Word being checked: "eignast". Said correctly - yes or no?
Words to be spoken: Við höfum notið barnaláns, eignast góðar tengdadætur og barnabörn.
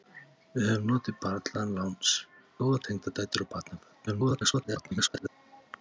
no